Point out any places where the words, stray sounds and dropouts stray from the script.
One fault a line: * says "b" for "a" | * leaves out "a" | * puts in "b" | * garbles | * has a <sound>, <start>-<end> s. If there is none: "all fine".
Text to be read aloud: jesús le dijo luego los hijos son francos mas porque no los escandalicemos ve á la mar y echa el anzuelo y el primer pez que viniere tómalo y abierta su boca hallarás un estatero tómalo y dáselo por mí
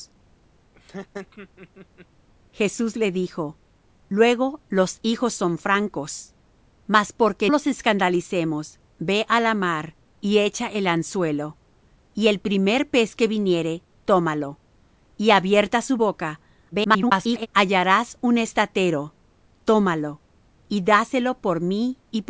* has a laugh, 0.7-2.1 s
* leaves out "no"
* garbles